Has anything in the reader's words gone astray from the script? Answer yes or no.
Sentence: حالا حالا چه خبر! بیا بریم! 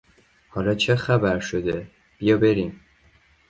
yes